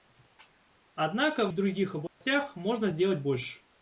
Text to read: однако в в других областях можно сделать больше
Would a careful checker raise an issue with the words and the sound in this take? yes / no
yes